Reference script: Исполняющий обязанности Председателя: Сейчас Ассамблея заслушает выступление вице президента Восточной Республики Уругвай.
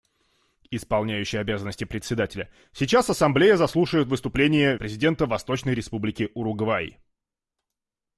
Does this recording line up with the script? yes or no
no